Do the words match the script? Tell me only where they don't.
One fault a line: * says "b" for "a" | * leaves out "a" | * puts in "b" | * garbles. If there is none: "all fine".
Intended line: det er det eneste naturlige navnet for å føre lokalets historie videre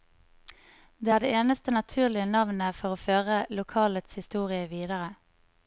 all fine